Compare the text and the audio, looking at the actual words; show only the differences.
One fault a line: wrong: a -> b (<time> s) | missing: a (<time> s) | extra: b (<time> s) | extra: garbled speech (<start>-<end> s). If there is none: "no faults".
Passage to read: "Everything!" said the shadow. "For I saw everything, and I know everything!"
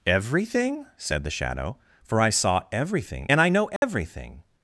no faults